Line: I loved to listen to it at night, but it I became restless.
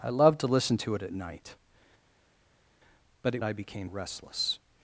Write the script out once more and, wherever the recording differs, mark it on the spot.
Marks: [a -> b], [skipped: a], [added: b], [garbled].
I loved to listen to it at night, but it I became restless.